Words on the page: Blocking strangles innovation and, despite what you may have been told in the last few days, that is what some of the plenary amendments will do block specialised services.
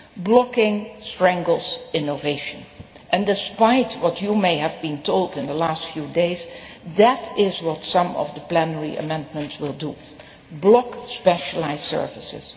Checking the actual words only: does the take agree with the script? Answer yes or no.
yes